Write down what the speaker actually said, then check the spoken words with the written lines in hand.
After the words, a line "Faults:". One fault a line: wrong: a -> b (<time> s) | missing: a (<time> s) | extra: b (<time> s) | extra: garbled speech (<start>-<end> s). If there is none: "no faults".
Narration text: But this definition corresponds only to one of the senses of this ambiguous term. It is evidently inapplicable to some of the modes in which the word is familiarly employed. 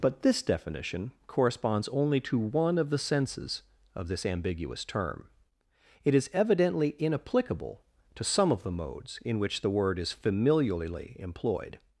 But this definition corresponds only to one of the senses of this ambiguous term. It is evidently inapplicable to some of the modes in which the word is familiarly employed.
Faults:
no faults